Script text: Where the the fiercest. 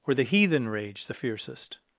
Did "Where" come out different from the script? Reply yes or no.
no